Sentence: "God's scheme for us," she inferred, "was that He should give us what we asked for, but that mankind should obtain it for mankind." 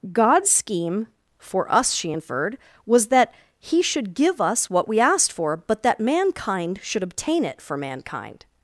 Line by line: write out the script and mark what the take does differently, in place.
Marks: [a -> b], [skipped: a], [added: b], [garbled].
"God's scheme for us," she inferred, "was that He should give us what we asked for, but that mankind should obtain it for mankind."